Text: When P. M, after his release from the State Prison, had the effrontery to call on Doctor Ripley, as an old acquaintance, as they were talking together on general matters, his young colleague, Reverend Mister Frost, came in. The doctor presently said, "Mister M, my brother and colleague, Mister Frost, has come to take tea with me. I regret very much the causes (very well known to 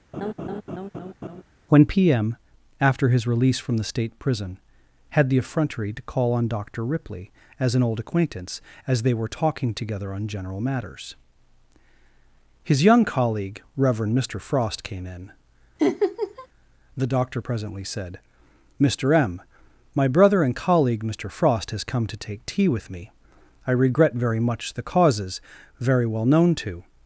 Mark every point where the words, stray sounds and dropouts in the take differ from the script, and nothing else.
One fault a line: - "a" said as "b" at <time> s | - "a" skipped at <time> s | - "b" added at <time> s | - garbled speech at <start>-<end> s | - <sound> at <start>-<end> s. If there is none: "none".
- laugh at 0.1-1.4 s
- laugh at 15.8-16.5 s